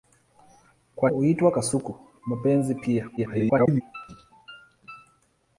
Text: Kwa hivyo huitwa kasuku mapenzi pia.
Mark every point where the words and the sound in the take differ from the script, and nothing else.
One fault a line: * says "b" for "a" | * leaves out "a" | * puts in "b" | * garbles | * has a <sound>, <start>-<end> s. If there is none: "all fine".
* leaves out "hivyo"
* garbles